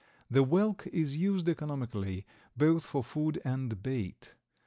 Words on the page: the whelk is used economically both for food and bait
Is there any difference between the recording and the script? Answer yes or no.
no